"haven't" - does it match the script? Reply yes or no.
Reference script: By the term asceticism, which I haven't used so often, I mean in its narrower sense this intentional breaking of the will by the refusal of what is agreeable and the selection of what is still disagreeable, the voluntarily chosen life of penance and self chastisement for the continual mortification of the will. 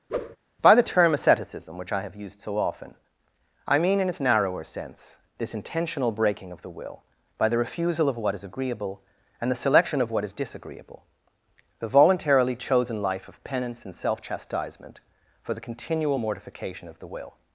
no